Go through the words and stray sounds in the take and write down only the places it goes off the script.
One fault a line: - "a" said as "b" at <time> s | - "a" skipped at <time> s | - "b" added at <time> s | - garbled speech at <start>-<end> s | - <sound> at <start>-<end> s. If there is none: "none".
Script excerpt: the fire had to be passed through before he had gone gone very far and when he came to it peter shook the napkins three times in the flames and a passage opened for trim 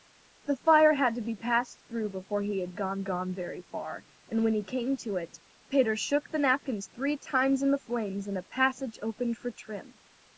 none